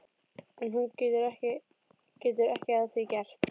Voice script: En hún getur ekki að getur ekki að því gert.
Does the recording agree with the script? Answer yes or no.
no